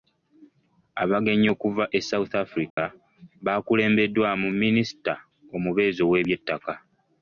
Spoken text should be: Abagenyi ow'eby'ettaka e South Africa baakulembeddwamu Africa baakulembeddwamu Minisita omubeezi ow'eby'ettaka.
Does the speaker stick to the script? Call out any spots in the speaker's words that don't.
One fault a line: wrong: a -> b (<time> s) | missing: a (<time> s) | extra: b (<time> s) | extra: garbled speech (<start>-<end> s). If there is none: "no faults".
wrong: ow'eby'ettaka -> okuva (1.6 s)
missing: Africa baakulembeddwamu (4.5 s)